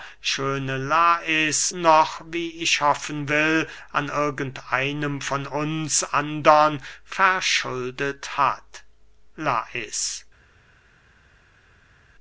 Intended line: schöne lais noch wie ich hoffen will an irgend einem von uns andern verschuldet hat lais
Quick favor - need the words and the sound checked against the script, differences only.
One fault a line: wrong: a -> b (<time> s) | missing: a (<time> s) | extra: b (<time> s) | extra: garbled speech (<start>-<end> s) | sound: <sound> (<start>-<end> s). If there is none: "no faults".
no faults